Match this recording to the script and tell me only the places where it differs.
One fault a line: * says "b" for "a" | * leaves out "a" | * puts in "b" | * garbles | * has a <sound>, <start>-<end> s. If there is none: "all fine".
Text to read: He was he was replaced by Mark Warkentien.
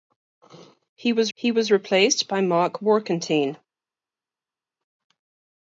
all fine